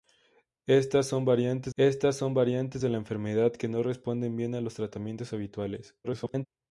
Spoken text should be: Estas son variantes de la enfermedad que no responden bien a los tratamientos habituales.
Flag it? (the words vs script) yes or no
yes